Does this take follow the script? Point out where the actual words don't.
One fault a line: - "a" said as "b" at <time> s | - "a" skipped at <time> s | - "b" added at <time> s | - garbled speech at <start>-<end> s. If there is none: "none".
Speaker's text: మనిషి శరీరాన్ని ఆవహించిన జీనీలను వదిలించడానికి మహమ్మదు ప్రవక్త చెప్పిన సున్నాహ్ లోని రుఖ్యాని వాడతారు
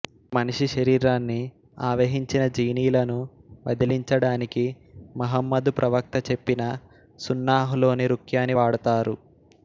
none